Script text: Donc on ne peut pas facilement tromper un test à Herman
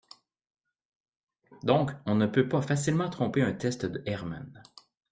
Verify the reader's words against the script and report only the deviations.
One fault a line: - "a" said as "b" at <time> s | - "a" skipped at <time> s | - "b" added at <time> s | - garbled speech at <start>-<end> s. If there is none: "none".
- "à" said as "de" at 3.9 s